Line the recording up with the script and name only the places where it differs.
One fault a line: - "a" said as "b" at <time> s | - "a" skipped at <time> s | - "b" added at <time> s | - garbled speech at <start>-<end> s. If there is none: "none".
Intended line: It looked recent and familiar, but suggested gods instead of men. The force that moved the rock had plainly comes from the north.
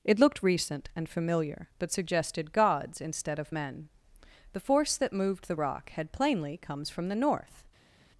none